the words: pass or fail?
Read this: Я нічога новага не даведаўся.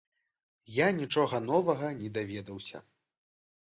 pass